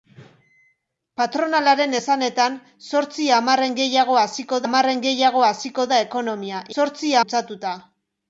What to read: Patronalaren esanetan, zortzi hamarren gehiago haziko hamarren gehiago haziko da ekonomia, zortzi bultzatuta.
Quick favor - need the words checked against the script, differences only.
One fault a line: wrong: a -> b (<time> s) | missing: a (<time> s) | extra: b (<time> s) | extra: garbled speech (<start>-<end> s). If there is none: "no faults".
no faults